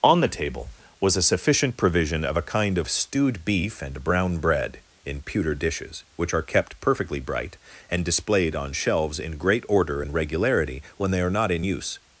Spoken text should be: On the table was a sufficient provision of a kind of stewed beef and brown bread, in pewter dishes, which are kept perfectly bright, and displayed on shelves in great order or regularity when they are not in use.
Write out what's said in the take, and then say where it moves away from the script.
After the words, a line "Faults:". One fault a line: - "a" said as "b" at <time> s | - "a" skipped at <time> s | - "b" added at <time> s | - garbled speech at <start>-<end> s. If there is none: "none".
On the table was a sufficient provision of a kind of stewed beef and brown bread, in pewter dishes, which are kept perfectly bright, and displayed on shelves in great order and regularity when they are not in use.
Faults:
- "or" said as "and" at 10.0 s